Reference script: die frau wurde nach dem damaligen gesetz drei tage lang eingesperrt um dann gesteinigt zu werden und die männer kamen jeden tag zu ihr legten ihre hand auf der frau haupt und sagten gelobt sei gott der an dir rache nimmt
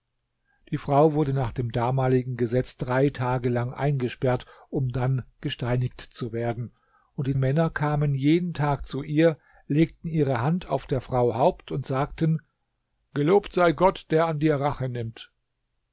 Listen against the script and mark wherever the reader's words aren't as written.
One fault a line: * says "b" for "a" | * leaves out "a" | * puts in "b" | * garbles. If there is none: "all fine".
all fine